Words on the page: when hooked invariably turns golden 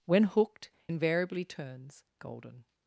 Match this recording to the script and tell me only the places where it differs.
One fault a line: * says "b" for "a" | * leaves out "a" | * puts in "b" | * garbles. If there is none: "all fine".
all fine